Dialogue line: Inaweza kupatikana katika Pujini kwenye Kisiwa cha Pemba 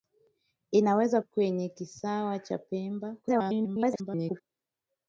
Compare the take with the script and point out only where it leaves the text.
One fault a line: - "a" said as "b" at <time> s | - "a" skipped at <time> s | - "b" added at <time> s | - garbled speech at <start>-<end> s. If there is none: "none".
- "kupatikana katika Pujini" skipped at 1.2 s
- garbled speech at 3.2-4.4 s